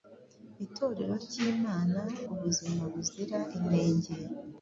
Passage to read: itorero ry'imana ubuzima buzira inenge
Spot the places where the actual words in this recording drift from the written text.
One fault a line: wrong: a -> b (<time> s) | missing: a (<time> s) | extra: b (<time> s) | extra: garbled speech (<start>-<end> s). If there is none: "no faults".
no faults